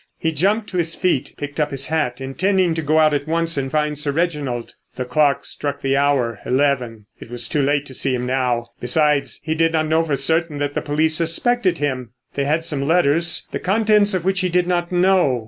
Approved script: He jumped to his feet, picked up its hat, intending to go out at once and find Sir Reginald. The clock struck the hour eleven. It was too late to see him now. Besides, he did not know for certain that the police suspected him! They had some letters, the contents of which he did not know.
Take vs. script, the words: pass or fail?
fail